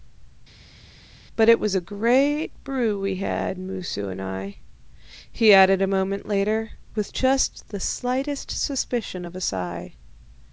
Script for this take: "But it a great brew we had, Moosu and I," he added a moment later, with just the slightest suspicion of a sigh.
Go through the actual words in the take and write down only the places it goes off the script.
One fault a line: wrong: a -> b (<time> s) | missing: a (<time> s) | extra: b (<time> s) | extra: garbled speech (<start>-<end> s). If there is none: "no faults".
extra: was (1.6 s)